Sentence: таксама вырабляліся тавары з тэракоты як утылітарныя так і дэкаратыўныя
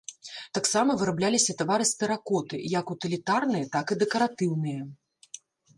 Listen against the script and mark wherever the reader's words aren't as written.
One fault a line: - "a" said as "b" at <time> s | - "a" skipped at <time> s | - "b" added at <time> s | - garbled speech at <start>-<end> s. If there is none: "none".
none